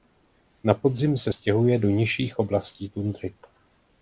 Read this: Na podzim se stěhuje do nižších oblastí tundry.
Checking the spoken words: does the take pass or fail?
pass